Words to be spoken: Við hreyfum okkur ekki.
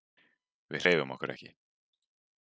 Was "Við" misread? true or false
false